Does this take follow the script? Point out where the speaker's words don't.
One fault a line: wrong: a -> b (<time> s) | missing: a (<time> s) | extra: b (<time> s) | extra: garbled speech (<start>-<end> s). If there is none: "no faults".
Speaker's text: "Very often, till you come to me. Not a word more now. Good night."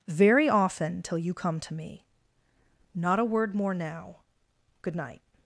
no faults